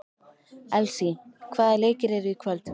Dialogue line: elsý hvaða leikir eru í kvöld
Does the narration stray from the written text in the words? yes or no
no